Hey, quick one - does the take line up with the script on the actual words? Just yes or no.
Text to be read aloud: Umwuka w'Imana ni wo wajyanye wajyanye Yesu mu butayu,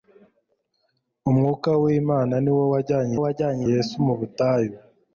yes